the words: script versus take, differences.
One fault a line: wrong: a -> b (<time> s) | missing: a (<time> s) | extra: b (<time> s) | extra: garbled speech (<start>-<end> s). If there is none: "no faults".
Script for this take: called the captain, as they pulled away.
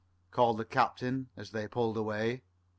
no faults